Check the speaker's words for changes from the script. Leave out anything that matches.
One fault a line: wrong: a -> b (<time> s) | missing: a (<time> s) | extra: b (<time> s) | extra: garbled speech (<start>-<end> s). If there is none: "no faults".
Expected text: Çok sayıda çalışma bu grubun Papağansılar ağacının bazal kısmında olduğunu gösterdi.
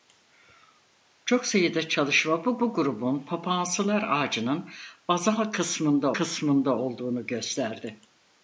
extra: bu (2.6 s)
extra: kısmında (6.1 s)